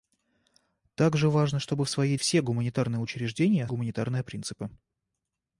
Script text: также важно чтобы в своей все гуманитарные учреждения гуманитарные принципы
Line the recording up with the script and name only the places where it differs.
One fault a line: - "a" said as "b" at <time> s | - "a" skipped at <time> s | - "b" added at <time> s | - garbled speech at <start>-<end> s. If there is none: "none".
none